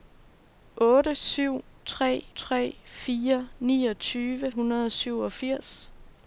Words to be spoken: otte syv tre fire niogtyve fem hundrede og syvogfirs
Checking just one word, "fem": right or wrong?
wrong